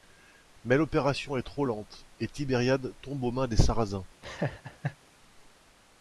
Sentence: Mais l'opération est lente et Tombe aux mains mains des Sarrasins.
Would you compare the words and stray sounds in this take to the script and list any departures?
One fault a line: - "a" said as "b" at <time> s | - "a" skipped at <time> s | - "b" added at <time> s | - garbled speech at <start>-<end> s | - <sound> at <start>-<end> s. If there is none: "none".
- "trop" added at 1.4 s
- "Tibériade" added at 2.3 s
- "mains" skipped at 3.5 s
- laugh at 4.2-5.0 s